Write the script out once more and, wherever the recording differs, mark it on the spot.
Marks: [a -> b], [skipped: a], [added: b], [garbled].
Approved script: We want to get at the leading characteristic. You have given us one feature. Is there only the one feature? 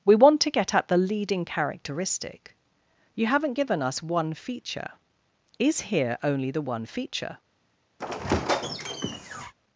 We want to get at the leading characteristic. You [have -> haven't] given us one feature. Is [there -> here] only the one feature?